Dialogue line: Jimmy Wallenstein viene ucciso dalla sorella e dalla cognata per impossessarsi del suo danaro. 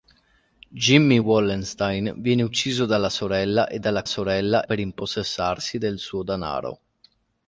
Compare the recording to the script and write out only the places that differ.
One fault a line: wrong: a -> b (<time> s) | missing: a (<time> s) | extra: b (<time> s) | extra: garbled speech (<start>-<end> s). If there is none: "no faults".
wrong: cognata -> sorella (4.1 s)